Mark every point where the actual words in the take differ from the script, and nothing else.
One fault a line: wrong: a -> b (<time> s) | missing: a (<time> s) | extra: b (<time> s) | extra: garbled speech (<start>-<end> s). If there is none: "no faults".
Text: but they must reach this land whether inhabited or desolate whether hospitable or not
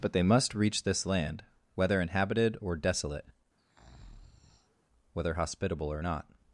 no faults